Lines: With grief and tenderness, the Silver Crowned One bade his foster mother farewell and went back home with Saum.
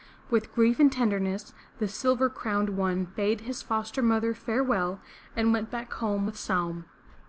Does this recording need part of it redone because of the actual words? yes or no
no